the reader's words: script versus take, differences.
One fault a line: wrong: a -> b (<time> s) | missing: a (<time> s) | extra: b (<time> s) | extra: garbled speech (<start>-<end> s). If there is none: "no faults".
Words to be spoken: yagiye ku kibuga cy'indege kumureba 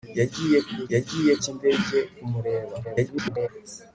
wrong: kibuga -> yagiye (0.9 s)
extra: garbled speech (2.8-3.5 s)